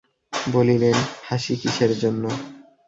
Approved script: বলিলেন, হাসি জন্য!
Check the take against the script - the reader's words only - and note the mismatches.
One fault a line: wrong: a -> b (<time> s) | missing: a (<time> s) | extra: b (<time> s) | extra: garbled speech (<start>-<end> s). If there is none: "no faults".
extra: কিসের (1.6 s)